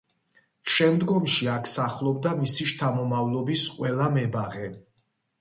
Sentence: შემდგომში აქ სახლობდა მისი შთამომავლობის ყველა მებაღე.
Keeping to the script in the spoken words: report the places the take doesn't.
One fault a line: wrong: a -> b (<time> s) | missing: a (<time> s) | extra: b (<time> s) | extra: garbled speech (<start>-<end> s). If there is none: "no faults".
no faults